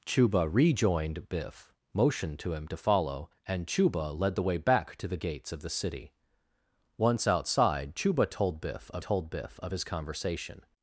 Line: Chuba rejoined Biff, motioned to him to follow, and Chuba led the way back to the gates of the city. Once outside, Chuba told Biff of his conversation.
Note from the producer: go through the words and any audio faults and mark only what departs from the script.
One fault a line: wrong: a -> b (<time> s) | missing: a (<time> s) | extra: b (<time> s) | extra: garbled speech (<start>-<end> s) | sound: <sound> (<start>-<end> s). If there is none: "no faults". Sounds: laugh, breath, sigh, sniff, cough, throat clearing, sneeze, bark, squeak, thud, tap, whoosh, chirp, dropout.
extra: told Biff of (9.0 s)